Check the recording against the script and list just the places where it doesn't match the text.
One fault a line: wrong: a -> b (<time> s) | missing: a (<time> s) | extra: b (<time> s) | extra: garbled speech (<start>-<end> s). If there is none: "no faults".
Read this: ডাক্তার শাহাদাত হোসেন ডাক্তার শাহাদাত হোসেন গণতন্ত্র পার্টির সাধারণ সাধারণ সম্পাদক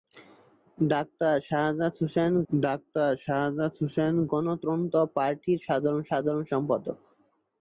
no faults